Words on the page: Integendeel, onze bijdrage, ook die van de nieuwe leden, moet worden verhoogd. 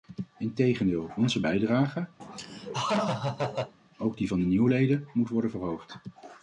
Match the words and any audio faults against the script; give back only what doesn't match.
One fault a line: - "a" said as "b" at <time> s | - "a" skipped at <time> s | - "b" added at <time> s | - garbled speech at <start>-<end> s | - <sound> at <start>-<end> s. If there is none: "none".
- laugh at 2.2-3.7 s